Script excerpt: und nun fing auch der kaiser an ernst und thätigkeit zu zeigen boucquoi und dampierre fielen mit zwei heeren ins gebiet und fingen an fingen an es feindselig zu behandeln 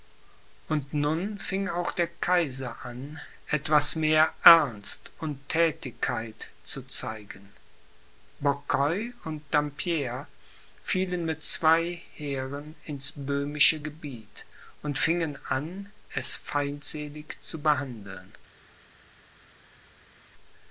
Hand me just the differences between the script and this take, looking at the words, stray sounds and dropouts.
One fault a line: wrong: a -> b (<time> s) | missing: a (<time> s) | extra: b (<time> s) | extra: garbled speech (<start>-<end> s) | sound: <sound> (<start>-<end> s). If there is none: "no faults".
extra: etwas mehr (3.5 s)
extra: böhmische (13.2 s)
missing: fingen an (15.9 s)